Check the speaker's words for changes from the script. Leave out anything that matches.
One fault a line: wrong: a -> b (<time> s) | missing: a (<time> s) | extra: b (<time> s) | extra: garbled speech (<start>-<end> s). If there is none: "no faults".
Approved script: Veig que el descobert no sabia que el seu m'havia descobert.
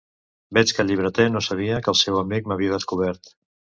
wrong: descobert -> llibreter (0.9 s)
extra: amic (2.2 s)